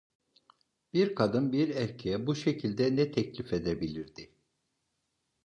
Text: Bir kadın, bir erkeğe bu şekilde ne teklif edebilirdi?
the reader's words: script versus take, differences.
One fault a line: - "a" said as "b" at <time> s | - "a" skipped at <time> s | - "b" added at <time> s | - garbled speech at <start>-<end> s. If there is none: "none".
none